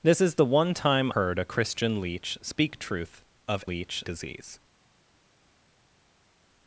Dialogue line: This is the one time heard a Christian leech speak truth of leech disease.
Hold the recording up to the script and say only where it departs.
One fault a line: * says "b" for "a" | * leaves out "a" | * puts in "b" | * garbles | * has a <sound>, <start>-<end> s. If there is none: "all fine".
all fine